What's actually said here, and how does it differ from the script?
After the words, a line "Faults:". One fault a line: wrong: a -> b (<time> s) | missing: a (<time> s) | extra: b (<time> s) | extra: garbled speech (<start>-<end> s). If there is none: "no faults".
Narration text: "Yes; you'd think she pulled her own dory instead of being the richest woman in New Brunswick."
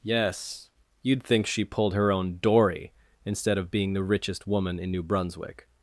"Yes; you'd think she pulled her own dory instead of being the richest woman in New Brunswick."
Faults:
no faults